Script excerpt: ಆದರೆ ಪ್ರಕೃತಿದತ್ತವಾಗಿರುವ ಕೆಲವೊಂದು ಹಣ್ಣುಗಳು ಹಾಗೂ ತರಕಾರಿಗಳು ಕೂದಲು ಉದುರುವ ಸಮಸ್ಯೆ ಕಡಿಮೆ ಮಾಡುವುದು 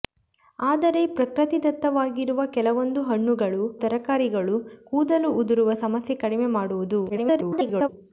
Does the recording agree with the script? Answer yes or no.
no